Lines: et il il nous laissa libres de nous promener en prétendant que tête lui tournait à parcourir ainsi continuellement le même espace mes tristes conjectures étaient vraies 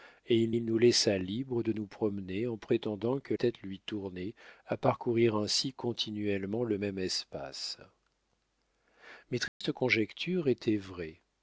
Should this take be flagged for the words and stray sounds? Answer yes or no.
yes